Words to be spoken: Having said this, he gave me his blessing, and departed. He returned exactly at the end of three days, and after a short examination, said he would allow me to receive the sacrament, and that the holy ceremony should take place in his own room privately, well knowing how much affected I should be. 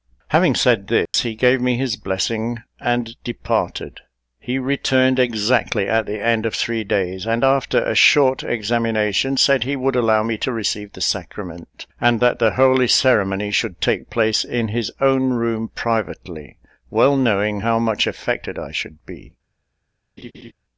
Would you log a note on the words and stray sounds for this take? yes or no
yes